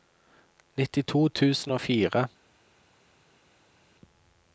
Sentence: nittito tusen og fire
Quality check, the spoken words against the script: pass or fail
pass